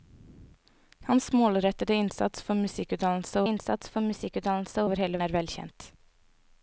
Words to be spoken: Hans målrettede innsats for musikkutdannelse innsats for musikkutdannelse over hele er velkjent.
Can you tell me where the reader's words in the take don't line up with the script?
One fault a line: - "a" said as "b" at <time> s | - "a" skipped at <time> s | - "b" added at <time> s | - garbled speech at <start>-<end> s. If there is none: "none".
none